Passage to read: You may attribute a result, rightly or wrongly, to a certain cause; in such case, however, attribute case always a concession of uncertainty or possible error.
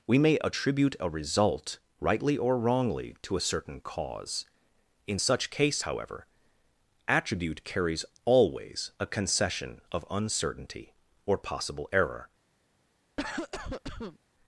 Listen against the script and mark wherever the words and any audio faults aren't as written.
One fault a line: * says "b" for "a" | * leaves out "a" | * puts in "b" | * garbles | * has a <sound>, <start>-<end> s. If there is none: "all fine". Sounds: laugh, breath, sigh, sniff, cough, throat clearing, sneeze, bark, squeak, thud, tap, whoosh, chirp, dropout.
* says "We" for "You"
* says "carries" for "case"
* has a cough, 13.2-14.2 s